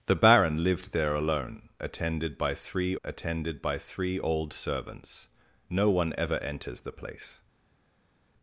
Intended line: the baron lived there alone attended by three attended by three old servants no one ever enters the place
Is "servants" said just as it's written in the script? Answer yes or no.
yes